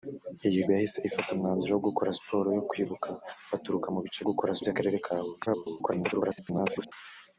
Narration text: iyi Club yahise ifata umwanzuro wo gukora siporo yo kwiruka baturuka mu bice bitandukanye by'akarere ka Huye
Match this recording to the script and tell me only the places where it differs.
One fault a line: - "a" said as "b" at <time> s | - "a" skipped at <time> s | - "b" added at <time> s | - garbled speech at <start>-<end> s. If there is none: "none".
- "Club" skipped at 0.6 s
- "bitandukanye" said as "gukora" at 4.3 s
- garbled speech at 5.5-6.9 s